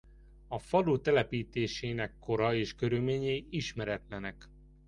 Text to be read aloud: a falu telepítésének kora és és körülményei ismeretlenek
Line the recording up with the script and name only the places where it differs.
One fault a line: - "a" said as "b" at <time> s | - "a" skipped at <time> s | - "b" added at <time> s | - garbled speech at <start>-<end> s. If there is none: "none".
- "és" skipped at 2.8 s